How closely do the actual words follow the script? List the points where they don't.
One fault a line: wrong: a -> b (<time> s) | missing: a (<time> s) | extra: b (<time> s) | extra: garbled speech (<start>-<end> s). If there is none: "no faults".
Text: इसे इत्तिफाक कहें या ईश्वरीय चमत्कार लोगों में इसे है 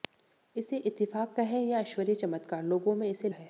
no faults